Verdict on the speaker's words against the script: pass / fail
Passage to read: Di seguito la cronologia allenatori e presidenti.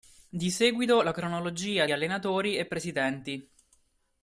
pass